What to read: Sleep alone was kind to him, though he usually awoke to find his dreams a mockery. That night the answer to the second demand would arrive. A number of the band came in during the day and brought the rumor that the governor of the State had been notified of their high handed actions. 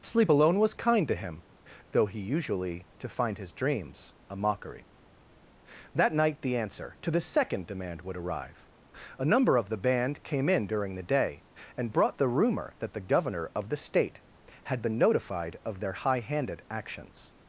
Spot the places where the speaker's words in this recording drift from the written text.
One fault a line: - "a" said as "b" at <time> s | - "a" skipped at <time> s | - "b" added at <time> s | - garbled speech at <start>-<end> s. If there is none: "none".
- "awoke" skipped at 2.9 s